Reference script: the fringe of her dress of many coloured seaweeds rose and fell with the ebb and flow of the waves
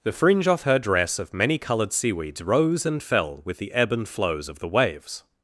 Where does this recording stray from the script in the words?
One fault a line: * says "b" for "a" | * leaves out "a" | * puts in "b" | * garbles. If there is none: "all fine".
* says "off" for "of"
* says "flows" for "flow"